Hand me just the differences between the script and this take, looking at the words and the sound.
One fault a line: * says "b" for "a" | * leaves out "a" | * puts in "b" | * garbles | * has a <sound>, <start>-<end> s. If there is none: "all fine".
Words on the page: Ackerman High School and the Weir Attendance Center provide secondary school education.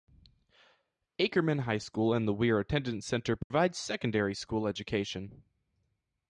* has a dropout, 3.4-3.5 s